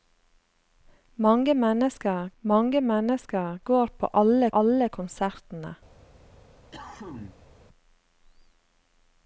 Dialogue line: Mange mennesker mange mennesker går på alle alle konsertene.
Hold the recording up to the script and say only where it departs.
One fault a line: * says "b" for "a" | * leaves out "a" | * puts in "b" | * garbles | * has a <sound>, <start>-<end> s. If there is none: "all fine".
* has a cough, 6.7-7.5 s